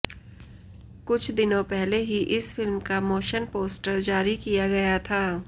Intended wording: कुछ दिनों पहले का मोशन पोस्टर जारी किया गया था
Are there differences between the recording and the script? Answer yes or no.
yes